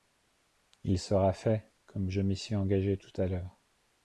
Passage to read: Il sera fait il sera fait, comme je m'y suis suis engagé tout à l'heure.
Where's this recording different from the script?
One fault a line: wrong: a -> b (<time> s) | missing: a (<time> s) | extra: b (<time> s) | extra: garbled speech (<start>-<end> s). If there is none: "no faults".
missing: il sera fait (1.7 s)
missing: suis (2.5 s)